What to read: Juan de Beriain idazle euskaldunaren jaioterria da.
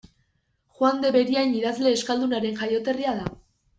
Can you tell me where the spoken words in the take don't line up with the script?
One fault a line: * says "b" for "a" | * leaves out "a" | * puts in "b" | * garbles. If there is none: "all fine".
all fine